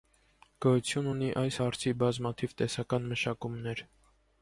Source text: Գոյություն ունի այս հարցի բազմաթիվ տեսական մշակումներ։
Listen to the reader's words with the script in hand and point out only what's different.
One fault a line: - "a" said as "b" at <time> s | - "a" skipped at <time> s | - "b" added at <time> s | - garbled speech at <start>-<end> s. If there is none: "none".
none